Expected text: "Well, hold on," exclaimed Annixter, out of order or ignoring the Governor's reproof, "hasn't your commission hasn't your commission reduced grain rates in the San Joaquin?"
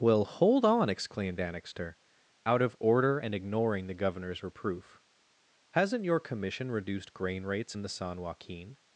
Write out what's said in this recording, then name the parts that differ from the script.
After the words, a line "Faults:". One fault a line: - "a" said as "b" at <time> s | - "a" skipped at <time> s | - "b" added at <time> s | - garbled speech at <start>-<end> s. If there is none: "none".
"Well, hold on," exclaimed Annixter, out of order and ignoring the Governor's reproof, "hasn't your commission reduced grain rates in the San Joaquin?"
Faults:
- "or" said as "and" at 3.2 s
- "hasn't your commission" skipped at 6.7 s